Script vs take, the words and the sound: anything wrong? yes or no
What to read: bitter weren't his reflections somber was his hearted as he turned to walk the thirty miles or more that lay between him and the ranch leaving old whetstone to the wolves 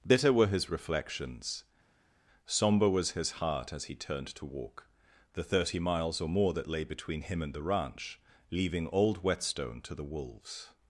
yes